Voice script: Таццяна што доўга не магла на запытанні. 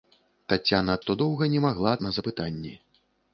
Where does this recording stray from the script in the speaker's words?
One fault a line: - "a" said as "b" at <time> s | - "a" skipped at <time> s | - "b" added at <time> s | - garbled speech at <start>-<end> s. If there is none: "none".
none